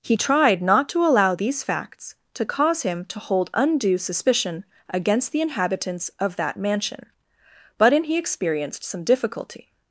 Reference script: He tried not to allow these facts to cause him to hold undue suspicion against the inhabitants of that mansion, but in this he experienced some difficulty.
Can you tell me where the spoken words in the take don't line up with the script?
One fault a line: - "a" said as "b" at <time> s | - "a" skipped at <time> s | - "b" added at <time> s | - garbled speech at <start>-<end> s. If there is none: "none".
- "this" skipped at 8.1 s